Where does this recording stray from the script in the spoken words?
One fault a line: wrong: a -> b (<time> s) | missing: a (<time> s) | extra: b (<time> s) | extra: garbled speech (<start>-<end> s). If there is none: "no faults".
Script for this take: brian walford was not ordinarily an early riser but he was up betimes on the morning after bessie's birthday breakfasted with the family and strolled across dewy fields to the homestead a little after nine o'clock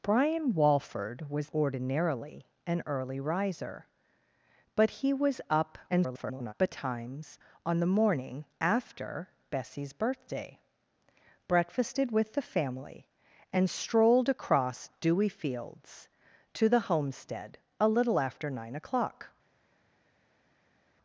missing: not (1.5 s)
extra: garbled speech (5.9-6.5 s)